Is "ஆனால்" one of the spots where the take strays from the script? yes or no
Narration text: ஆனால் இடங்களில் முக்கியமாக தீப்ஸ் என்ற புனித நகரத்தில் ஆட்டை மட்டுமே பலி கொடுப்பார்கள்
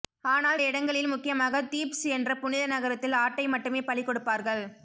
no